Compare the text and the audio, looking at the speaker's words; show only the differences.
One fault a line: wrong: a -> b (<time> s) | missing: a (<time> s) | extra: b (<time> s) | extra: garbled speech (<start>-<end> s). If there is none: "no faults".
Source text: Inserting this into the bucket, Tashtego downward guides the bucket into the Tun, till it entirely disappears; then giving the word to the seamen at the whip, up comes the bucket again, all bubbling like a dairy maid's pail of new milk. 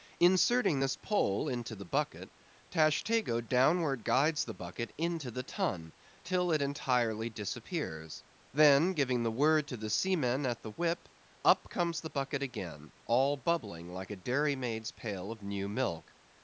extra: pole (1.0 s)